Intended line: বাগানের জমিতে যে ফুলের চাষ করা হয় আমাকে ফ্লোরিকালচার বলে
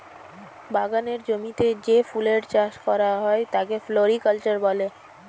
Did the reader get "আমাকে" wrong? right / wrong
wrong